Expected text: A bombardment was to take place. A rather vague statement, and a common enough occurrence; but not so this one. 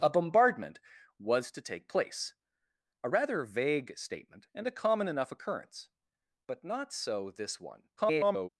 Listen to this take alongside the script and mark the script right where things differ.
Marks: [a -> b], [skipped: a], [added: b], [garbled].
A bombardment was to take place. A rather vague statement, and a common enough occurrence; but not so this one. [garbled]